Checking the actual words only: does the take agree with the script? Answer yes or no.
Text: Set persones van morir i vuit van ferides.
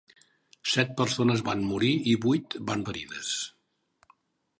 yes